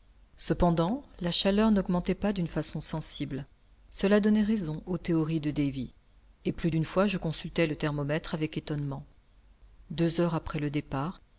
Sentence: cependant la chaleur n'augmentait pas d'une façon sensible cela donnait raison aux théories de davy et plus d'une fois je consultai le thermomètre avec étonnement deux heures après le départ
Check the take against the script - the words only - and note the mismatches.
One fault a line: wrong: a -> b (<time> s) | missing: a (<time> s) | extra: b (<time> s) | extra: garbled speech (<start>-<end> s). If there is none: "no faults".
no faults